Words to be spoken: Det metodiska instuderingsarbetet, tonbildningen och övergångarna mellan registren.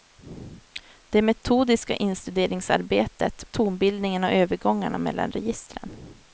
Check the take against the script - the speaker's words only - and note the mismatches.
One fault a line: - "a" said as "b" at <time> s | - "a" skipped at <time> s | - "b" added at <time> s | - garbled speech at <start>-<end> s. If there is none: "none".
none